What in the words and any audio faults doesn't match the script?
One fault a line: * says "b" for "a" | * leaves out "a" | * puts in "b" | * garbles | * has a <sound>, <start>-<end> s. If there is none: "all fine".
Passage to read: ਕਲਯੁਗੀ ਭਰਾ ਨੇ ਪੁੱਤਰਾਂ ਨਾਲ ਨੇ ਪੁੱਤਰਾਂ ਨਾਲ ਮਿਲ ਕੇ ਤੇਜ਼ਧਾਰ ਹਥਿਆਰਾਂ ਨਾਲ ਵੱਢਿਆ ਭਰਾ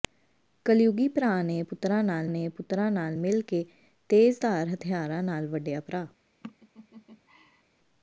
* has a laugh, 6.4-7.6 s